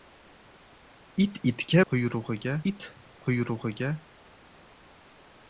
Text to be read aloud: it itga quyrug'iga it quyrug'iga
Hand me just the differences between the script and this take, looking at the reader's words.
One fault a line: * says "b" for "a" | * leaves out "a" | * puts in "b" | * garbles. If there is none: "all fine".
all fine